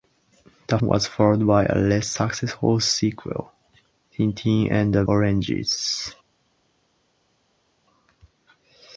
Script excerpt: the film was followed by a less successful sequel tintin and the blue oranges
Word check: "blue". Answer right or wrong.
wrong